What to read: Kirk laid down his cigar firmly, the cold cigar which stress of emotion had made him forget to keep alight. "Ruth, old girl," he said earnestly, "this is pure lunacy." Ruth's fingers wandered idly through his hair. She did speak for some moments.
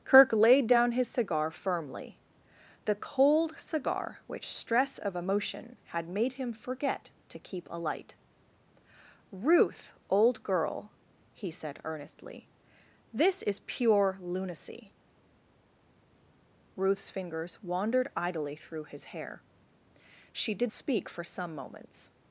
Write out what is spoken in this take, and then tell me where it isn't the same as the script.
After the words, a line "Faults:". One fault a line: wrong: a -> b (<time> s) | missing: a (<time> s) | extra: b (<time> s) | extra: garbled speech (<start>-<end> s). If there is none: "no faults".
Kirk laid down his cigar firmly, the cold cigar which stress of emotion had made him forget to keep alight. "Ruth, old girl," he said earnestly, "this is pure lunacy." Ruth's fingers wandered idly through his hair. She did speak for some moments.
Faults:
no faults